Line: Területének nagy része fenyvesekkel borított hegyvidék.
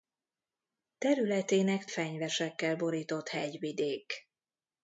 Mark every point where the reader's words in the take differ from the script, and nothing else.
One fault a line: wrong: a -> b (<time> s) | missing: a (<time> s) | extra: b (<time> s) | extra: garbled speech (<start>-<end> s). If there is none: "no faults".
missing: nagy része (1.9 s)